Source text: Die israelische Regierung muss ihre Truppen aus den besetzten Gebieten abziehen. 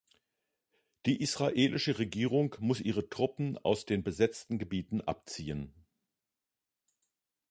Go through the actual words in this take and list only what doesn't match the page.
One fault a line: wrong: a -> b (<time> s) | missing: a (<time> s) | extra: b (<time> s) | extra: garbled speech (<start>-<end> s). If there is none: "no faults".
no faults